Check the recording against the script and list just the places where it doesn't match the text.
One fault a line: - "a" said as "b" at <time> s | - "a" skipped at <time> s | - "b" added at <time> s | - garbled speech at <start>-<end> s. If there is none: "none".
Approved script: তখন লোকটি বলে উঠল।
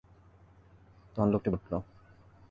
- "বলে" skipped at 1.5 s